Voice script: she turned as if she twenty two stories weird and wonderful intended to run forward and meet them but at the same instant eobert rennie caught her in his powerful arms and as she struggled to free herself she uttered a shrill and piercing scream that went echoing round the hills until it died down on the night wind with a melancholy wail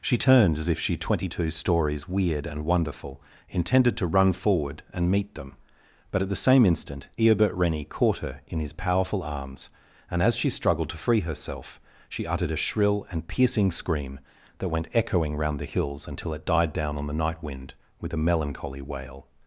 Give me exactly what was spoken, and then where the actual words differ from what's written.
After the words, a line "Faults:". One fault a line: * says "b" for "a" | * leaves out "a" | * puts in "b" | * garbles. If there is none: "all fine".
she turned as if she twenty two stories weird and wonderful intended to run forward and meet them but at the same instant eobert rennie caught her in his powerful arms and as she struggled to free herself she uttered a shrill and piercing scream that went echoing round the hills until it died down on the night wind with a melancholy wail
Faults:
all fine